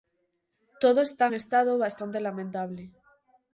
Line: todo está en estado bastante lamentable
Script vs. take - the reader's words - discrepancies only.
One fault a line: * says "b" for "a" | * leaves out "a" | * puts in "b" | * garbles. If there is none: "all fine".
* leaves out "en"